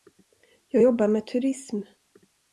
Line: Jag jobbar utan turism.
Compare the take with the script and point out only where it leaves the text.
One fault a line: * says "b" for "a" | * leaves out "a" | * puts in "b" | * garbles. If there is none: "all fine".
* says "med" for "utan"